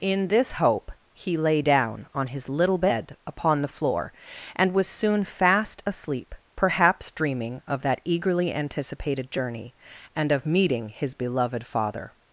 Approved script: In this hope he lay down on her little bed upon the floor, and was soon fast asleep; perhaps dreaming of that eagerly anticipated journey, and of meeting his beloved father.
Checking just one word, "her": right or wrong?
wrong